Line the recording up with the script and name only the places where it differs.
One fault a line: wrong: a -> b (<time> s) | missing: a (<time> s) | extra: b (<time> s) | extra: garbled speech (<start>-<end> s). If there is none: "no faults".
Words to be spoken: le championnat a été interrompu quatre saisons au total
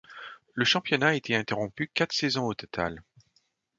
no faults